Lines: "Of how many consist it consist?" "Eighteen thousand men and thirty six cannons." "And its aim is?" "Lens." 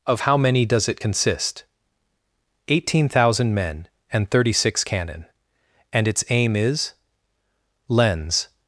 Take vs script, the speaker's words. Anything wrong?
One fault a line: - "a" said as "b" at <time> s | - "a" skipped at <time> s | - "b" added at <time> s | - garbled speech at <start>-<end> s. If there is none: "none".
- "consist" said as "does" at 0.6 s
- "cannons" said as "cannon" at 4.8 s